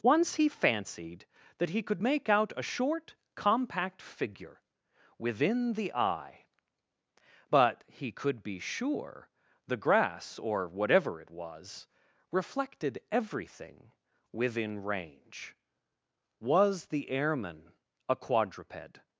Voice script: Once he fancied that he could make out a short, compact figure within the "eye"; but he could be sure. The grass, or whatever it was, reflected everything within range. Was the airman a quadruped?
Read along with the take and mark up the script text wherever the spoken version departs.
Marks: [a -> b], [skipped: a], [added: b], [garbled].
Once he fancied that he could make out a short, compact figure within the "eye"; but he could be sure. The grass, or whatever it was, reflected everything within range. Was the airman a quadruped?